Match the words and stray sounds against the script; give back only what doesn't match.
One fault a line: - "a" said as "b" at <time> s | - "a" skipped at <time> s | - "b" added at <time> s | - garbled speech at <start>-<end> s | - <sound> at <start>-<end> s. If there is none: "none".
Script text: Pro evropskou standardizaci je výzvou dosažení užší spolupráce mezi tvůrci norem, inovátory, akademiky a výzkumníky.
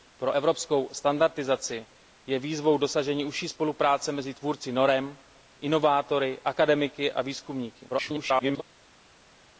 - garbled speech at 7.9-8.6 s